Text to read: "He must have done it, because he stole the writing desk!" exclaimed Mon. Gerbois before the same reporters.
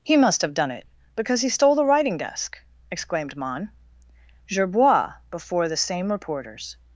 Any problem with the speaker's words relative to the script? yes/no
no